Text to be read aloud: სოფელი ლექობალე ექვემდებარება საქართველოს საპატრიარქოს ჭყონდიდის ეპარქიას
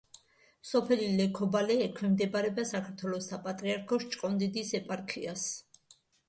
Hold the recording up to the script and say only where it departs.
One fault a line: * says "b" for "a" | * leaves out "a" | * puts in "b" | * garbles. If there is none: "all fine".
all fine